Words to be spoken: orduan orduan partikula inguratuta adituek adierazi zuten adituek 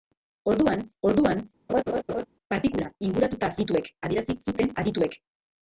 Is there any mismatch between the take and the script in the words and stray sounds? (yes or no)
yes